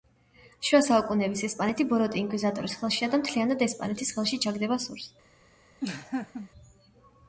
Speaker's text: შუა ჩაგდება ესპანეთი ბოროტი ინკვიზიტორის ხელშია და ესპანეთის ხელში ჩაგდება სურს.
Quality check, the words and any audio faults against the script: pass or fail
fail